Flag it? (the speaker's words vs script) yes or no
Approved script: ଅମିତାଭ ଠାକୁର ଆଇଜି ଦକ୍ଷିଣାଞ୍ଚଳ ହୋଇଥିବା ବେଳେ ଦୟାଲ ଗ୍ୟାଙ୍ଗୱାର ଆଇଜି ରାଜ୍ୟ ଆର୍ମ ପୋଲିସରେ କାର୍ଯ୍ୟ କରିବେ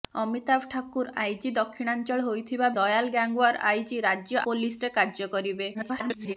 yes